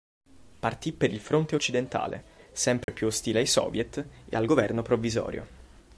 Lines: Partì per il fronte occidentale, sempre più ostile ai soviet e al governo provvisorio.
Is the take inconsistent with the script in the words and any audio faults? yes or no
yes